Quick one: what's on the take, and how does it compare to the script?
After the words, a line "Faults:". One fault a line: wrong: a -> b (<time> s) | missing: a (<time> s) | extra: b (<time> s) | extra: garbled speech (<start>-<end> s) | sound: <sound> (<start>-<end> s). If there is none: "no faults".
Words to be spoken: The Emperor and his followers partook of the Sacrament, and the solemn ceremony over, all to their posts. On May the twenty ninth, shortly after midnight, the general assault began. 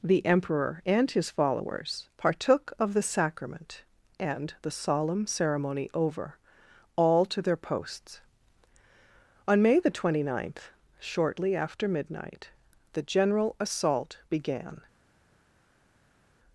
The Emperor and his followers partook of the Sacrament, and the solemn ceremony over, all to their posts. On May the twenty ninth, shortly after midnight, the general assault began.
Faults:
no faults